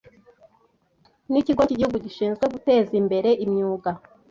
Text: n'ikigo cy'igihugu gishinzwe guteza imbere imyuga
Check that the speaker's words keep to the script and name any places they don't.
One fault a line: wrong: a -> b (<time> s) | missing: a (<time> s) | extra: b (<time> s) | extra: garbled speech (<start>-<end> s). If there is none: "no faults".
no faults